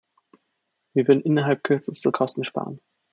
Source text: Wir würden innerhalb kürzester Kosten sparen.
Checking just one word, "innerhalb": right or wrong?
right